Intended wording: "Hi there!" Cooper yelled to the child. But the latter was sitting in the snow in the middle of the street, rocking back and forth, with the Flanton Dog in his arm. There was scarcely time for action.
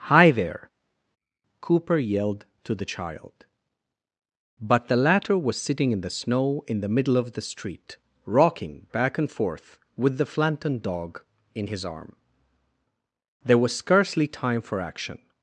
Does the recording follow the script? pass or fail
pass